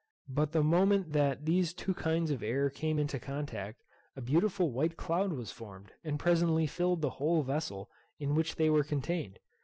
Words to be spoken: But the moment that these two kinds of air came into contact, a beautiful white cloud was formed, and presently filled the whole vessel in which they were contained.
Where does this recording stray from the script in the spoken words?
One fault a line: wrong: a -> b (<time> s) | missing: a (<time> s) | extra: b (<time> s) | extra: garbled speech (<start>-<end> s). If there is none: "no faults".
no faults